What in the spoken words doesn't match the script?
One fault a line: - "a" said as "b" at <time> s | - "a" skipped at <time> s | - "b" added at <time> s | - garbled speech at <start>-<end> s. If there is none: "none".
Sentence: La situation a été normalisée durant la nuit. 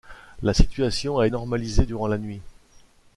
- "été" skipped at 1.3 s